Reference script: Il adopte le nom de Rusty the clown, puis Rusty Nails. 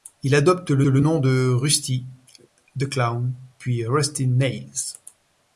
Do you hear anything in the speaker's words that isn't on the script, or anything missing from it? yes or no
yes